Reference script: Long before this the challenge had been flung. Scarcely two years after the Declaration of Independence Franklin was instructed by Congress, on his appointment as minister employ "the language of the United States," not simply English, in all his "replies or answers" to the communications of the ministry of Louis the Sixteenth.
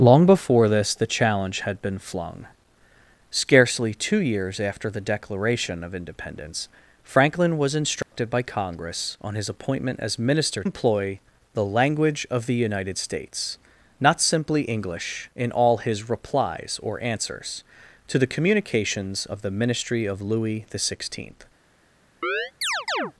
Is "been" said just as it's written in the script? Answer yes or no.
yes